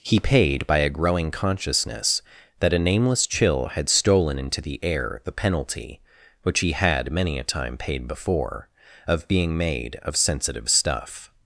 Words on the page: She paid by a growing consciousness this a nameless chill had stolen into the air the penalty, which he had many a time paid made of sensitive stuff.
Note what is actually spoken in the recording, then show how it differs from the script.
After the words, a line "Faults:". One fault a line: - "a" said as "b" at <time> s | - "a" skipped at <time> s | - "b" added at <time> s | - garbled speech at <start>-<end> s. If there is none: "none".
He paid by a growing consciousness that a nameless chill had stolen into the air the penalty, which he had many a time paid before, of being made of sensitive stuff.
Faults:
- "She" said as "He" at 0.0 s
- "this" said as "that" at 2.6 s
- "before of being" added at 8.1 s